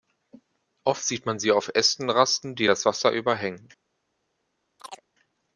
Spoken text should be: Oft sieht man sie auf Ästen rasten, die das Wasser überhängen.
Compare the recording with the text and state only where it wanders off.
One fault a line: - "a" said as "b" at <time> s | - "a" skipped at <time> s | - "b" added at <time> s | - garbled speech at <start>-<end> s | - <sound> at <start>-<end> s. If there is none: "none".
- chirp at 4.8-5.1 s